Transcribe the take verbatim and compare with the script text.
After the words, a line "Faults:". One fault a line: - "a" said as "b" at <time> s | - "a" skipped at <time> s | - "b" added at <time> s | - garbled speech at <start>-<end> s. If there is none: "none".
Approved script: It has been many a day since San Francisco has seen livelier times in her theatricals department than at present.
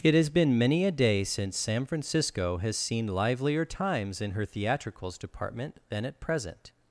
It has been many a day since San Francisco has seen livelier times in her theatricals department than at present.
Faults:
none